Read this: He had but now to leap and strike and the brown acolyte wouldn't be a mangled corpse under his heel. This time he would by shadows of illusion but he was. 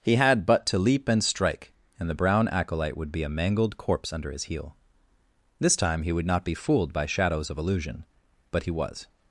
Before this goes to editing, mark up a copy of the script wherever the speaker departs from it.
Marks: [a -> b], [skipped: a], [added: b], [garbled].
He had but [skipped: now] to leap and strike and the brown acolyte [wouldn't -> would] be a mangled corpse under his heel. This time he would [added: not be fooled] by shadows of illusion but he was.